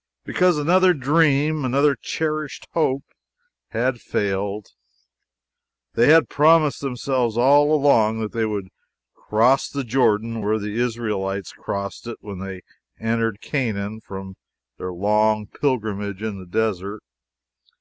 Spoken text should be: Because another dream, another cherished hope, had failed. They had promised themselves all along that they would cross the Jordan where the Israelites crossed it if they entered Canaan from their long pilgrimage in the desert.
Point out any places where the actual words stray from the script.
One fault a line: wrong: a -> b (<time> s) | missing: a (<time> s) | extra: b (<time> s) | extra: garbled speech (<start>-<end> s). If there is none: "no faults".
wrong: if -> when (12.2 s)